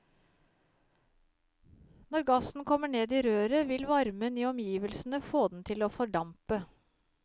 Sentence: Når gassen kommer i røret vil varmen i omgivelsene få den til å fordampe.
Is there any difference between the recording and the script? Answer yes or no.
yes